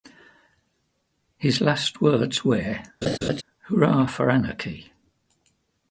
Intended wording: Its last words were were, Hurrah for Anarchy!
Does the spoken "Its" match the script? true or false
false